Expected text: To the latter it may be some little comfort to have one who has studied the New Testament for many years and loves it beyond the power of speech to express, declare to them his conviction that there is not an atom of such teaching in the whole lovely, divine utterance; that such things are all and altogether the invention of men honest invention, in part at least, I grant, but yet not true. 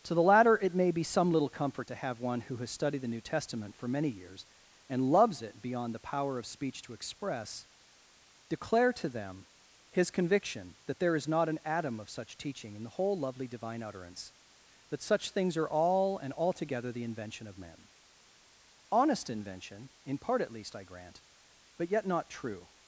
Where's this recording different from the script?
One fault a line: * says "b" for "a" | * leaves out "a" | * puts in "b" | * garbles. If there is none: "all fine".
all fine